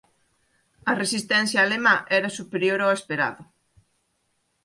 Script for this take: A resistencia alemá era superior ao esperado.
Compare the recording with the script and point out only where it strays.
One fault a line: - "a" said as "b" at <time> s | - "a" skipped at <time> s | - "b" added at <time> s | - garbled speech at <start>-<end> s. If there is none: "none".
none